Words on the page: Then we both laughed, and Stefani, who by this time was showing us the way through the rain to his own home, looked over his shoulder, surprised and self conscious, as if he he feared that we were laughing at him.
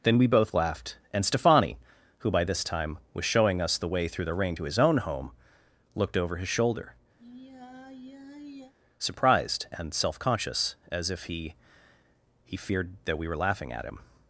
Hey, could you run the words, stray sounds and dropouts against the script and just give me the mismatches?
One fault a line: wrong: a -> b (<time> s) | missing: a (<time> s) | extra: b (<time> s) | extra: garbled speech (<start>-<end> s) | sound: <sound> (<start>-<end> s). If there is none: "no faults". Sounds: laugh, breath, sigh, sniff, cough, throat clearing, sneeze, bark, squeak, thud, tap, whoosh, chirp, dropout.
sound: sigh (7.2-8.7 s)